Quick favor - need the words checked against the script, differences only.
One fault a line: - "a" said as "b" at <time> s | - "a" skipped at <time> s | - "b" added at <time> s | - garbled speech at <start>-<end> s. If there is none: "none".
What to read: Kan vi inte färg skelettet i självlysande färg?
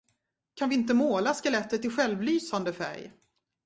- "färg" said as "måla" at 0.9 s